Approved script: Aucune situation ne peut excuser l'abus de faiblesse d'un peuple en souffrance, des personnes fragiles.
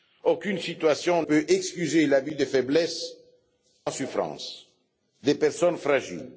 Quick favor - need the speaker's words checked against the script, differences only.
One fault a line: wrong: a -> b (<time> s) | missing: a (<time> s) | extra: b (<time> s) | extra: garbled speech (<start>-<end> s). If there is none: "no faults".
missing: ne (1.2 s)
missing: d'un peuple (3.1 s)